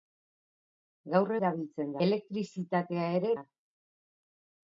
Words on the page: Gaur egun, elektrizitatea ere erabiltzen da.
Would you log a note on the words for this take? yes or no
yes